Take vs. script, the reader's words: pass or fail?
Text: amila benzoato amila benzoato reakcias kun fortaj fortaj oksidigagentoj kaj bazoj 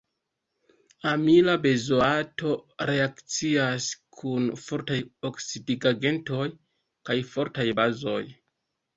fail